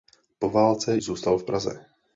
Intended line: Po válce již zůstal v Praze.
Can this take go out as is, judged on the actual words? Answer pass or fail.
fail